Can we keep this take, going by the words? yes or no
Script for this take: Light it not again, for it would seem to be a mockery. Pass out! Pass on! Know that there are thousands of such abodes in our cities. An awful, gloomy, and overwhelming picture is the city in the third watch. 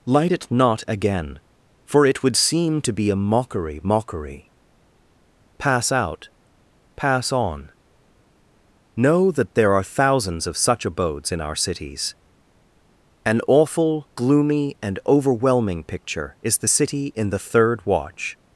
no